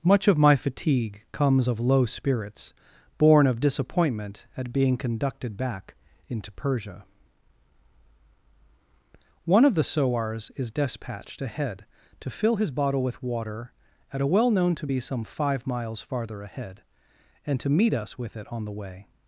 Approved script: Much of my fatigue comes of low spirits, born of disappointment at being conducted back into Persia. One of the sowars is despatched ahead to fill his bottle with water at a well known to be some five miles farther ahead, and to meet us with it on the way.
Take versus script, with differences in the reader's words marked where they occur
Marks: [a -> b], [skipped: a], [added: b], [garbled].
Much of my fatigue comes of low spirits, born of disappointment at being conducted back into Persia. One of the sowars is despatched ahead to fill his bottle with water at a well known to be some five miles farther ahead, and to meet us with it on the way.